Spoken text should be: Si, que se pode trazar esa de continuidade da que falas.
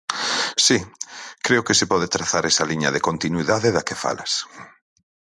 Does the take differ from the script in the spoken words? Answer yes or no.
yes